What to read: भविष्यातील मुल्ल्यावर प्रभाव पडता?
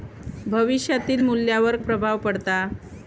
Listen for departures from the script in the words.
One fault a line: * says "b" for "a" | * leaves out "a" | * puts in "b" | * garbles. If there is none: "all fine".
all fine